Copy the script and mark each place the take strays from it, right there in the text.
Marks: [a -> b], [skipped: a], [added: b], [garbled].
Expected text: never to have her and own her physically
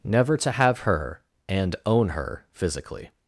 never to have her and own her physically